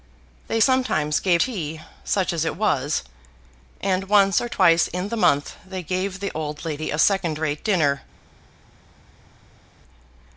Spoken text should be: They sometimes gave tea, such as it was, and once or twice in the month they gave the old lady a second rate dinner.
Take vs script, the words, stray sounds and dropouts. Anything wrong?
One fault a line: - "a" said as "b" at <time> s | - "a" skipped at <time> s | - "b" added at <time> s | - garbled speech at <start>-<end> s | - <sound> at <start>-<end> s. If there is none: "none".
none